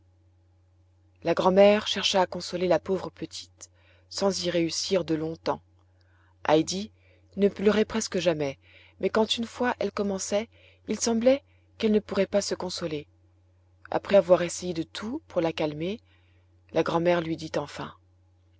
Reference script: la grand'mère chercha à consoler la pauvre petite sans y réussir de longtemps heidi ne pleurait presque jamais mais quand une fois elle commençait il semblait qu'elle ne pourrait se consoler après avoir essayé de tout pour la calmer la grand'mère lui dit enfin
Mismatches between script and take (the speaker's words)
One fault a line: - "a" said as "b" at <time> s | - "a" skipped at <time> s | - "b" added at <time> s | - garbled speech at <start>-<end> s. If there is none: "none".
- "pas" added at 12.2 s